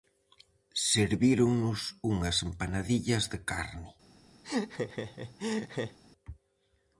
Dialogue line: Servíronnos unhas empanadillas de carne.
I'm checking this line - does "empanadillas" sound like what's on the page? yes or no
yes